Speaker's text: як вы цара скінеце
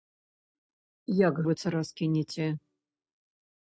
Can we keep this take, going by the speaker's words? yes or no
yes